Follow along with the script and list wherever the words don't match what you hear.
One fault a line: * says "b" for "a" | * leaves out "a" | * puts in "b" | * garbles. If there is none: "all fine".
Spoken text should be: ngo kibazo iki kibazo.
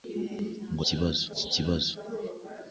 all fine